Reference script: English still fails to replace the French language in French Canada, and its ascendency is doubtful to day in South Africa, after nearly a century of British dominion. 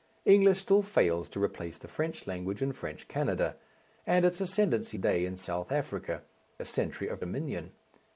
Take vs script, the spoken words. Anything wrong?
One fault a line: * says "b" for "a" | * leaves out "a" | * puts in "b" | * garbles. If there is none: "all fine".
* leaves out "is doubtful to"
* leaves out "after nearly"
* leaves out "British"